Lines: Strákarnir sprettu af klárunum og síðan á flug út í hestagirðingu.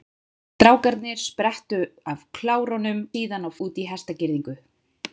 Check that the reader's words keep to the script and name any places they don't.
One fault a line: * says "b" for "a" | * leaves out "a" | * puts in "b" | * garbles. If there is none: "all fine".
* leaves out "og"
* leaves out "flug"